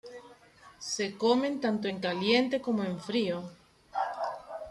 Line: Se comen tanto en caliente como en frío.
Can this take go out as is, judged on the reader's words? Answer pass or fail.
pass